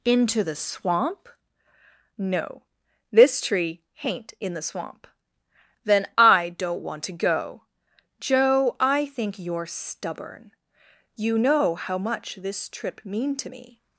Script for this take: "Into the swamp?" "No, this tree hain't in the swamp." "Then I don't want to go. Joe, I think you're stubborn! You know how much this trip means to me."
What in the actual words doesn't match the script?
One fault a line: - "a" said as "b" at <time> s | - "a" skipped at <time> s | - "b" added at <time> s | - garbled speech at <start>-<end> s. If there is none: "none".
- "means" said as "mean" at 13.0 s